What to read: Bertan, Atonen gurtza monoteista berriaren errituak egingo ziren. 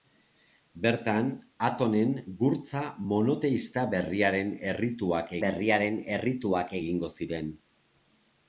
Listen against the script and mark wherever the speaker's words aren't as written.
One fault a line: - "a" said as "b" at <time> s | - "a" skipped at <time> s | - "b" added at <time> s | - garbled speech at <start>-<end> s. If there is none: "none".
- "berriaren errituak" added at 5.5 s